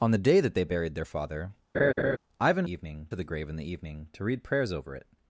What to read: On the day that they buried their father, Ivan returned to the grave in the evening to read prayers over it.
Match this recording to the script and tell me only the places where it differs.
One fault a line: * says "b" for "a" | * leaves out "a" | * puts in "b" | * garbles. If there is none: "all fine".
* says "evening" for "returned"